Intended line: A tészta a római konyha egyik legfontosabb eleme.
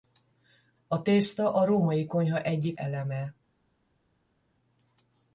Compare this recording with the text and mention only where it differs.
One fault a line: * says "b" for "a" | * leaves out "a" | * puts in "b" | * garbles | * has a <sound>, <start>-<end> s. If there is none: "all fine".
* leaves out "legfontosabb"